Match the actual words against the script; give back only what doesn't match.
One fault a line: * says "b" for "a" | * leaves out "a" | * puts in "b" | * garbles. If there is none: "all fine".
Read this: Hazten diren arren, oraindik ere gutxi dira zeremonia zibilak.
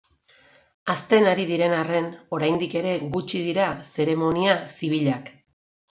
* puts in "ari"